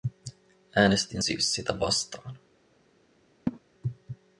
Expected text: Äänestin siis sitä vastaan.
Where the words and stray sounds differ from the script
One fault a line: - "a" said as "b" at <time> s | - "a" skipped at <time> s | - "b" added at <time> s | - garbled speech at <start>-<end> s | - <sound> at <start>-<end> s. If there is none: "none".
- laugh at 3.5-3.6 s